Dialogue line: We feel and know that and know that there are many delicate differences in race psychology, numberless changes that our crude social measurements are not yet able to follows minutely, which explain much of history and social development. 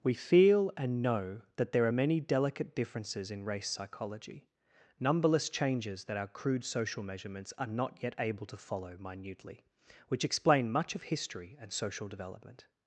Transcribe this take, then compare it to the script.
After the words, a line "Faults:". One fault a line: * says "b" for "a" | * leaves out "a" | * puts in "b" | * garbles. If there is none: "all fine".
We feel and know that there are many delicate differences in race psychology, numberless changes that our crude social measurements are not yet able to follow minutely, which explain much of history and social development.
Faults:
* leaves out "and know that"
* says "follow" for "follows"